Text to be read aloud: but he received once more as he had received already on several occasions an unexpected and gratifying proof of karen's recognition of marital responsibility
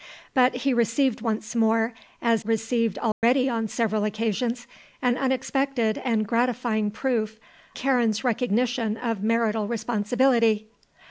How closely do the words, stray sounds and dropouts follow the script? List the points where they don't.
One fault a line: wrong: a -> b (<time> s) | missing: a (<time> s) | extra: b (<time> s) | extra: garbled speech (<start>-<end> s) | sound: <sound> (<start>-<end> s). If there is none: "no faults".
missing: he had (2.5 s)
sound: dropout (3.1-3.2 s)
missing: of (7.4 s)